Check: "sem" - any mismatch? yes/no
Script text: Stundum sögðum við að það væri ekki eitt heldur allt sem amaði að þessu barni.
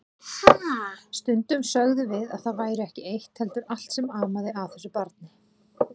no